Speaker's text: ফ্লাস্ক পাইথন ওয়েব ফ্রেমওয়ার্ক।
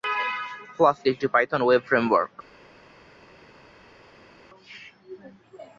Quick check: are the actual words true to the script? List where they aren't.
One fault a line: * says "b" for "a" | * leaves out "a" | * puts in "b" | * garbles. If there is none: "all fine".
* puts in "একটি"